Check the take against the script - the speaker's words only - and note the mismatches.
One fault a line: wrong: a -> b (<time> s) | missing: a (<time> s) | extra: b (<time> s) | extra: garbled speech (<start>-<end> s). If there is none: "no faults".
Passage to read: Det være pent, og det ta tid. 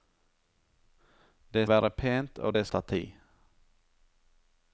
no faults